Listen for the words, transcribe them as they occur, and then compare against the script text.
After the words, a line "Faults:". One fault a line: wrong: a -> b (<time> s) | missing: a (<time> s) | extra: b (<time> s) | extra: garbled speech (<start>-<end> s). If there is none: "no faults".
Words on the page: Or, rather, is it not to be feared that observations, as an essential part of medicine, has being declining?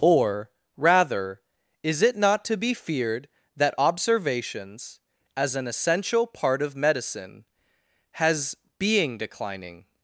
Or, rather, is it not to be feared that observations, as an essential part of medicine, has being declining?
Faults:
no faults